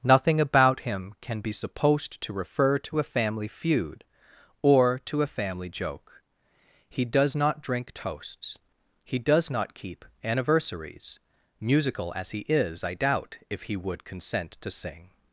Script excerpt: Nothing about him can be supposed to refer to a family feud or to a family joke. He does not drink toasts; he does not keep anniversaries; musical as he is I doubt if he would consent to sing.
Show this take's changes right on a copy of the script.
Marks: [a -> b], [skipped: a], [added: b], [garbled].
Nothing about him can be supposed to refer to a family feud or to a family joke. He does not drink toasts; he does not keep anniversaries; musical as he is I doubt if he would consent to sing.